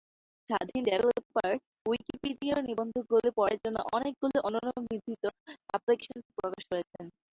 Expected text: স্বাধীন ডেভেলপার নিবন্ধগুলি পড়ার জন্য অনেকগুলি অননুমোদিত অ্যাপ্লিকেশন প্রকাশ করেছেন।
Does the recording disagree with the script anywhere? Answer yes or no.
yes